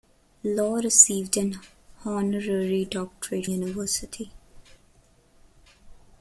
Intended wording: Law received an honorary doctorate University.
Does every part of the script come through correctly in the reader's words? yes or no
yes